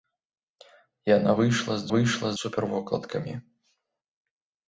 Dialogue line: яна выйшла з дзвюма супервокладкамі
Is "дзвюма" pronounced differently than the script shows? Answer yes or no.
yes